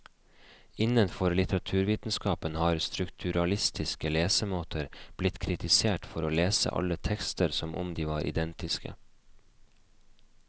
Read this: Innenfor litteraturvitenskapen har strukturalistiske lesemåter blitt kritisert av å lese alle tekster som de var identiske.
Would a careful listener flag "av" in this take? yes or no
yes